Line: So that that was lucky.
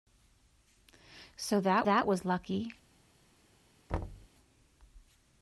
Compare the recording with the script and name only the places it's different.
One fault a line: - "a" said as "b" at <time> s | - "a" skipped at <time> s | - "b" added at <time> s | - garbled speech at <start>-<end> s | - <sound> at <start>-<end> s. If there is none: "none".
- thud at 3.9-4.3 s